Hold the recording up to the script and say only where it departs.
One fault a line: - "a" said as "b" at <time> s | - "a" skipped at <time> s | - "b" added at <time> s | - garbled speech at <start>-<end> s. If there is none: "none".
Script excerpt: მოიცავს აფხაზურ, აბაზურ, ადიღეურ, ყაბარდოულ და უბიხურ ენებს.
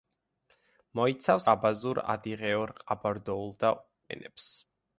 - "აფხაზურ" skipped at 1.4 s
- "უბიხურ" skipped at 3.7 s